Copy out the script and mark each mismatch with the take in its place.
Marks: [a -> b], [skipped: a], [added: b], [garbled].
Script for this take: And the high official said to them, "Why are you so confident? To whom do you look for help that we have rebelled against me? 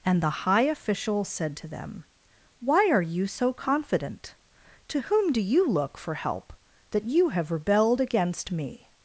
And the high official said to them, "Why are you so confident? To whom do you look for help that [we -> you] have rebelled against me?